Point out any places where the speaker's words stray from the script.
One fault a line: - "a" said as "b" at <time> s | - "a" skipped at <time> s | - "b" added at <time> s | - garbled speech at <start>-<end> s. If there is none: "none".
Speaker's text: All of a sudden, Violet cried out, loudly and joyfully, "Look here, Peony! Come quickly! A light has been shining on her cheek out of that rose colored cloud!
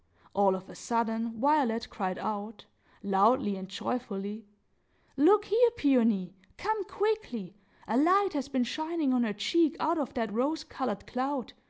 none